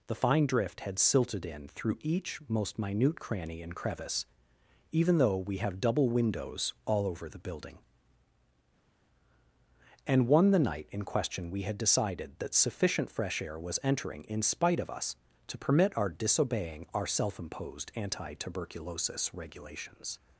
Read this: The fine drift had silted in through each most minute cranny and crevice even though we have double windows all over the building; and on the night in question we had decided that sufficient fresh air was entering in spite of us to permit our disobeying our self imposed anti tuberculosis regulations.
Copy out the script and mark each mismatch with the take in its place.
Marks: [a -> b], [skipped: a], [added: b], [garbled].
The fine drift had silted in through each most minute cranny and crevice even though we have double windows all over the building; and [on -> one] the night in question we had decided that sufficient fresh air was entering in spite of us to permit our disobeying our self imposed anti tuberculosis regulations.